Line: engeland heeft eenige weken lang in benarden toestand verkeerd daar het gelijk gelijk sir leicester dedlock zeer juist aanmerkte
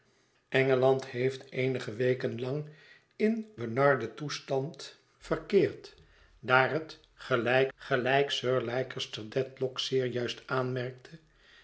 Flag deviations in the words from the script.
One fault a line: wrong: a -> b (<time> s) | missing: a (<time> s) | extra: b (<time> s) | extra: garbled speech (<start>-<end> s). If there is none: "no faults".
no faults